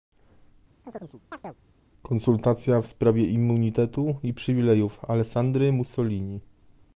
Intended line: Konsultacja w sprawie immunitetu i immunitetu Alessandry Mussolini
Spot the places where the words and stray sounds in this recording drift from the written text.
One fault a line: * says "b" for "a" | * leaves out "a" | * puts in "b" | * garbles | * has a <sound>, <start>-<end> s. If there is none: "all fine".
* has a chirp, 0.8-1.6 s
* says "przywilejów" for "immunitetu"